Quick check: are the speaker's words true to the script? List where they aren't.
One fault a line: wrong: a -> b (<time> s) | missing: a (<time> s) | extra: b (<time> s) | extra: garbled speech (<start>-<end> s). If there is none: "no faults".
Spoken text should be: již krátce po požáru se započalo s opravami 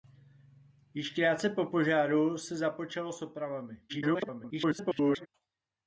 extra: garbled speech (3.9-5.3 s)